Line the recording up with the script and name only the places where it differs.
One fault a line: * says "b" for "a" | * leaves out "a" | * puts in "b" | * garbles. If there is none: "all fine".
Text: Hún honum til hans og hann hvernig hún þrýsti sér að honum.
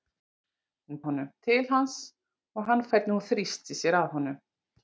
all fine